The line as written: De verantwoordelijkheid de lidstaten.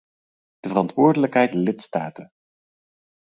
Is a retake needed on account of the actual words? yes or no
no